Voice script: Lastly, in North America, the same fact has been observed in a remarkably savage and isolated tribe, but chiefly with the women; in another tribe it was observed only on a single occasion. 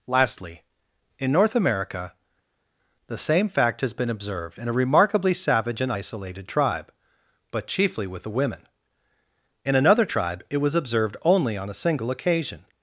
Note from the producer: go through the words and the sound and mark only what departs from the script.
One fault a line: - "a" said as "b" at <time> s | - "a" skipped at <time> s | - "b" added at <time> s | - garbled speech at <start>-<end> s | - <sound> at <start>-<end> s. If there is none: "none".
none